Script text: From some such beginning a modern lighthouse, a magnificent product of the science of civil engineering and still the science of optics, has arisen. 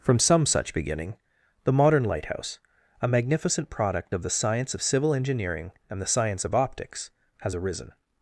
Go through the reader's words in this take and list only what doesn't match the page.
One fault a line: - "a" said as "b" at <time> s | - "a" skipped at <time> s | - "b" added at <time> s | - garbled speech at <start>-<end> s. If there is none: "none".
- "a" said as "the" at 1.6 s
- "still" skipped at 6.0 s